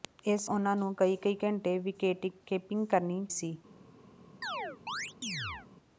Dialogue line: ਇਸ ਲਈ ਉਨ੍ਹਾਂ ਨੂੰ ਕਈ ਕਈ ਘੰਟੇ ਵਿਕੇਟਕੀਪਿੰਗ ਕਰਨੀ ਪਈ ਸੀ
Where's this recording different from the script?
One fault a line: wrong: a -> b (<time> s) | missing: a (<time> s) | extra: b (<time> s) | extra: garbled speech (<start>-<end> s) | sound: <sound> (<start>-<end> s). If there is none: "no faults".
missing: ਲਈ (0.5 s)
missing: ਪਈ (3.2 s)
sound: chirp (4.4-5.7 s)